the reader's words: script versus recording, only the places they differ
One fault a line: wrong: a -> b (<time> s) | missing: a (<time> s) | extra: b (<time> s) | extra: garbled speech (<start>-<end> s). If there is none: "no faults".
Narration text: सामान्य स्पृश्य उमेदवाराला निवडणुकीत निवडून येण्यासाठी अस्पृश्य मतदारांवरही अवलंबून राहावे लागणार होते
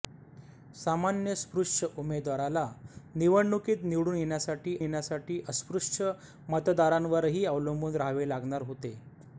extra: येण्यासाठी (4.8 s)